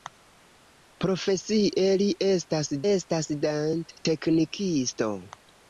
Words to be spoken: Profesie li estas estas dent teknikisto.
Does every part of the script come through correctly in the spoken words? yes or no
yes